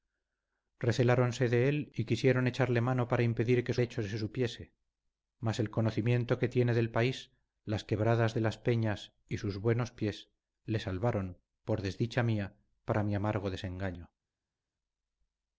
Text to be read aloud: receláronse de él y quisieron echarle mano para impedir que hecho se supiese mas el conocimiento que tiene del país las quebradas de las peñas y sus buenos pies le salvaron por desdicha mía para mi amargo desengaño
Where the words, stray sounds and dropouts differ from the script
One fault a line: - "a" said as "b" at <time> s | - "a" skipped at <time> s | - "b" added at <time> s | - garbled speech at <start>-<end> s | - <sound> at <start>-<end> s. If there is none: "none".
none